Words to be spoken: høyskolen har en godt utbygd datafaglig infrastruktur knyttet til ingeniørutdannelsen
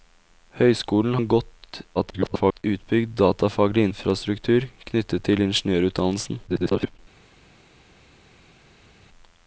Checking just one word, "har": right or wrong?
wrong